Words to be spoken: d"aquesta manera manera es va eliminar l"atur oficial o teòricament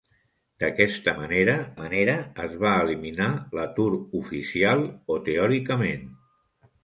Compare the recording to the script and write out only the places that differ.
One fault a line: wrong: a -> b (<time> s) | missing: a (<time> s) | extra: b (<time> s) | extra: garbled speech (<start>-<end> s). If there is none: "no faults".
no faults